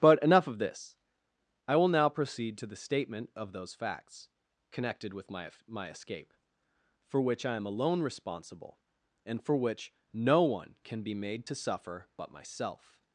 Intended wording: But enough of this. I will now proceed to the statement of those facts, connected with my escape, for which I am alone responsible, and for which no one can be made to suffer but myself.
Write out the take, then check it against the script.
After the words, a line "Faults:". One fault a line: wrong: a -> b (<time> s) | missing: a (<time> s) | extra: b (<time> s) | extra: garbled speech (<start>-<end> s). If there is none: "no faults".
But enough of this. I will now proceed to the statement of those facts, connected with my my escape, for which I am alone responsible, and for which no one can be made to suffer but myself.
Faults:
extra: my (5.7 s)